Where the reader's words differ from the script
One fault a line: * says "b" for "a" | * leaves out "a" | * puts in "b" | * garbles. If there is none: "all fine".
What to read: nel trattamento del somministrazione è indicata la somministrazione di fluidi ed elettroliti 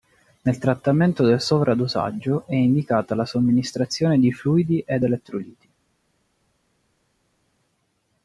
* says "sovradosaggio" for "somministrazione"